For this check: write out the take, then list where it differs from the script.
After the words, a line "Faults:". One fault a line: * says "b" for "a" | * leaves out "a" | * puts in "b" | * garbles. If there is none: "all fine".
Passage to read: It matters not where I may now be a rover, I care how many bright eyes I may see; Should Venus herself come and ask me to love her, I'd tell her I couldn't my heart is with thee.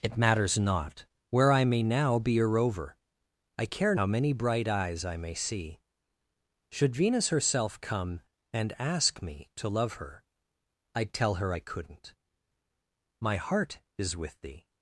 It matters not where I may now be a rover, I care how many bright eyes I may see; Should Venus herself come and ask me to love her, I'd tell her I couldn't my heart is with thee.
Faults:
all fine